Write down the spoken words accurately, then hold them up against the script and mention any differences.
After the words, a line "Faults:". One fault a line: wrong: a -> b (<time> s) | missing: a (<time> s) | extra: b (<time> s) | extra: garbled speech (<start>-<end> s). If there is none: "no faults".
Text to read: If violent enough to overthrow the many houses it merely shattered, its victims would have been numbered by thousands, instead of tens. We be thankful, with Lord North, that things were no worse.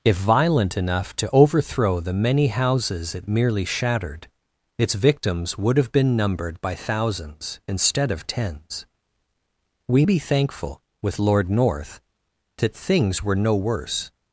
If violent enough to overthrow the many houses it merely shattered, its victims would have been numbered by thousands, instead of tens. We be thankful, with Lord North, that things were no worse.
Faults:
no faults